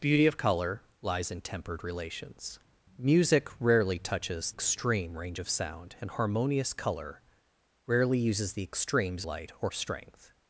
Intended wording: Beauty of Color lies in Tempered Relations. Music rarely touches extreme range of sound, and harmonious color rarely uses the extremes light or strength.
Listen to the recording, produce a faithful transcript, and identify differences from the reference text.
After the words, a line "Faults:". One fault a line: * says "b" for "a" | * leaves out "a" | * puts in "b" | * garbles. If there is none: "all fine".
Beauty of Color lies in Tempered Relations. Music rarely touches extreme range of sound, and harmonious color rarely uses the extremes light or strength.
Faults:
all fine